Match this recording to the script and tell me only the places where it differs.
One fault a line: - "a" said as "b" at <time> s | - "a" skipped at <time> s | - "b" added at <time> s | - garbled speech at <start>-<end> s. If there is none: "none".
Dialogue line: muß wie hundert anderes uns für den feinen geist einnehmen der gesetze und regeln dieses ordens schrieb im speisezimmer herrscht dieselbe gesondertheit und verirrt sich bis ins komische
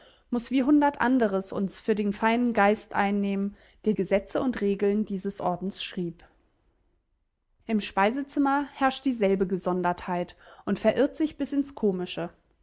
none